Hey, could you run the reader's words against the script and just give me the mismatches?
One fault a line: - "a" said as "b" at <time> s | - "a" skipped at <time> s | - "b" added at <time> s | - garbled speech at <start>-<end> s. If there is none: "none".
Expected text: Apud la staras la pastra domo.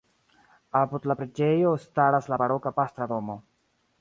- "preĝejo" added at 1.2 s
- "baroka" added at 2.4 s